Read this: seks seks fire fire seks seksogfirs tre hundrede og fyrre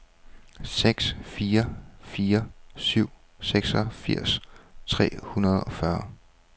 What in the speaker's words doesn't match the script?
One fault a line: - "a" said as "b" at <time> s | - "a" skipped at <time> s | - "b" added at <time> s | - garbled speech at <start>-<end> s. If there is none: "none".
- "seks" skipped at 1.1 s
- "seks" said as "syv" at 2.8 s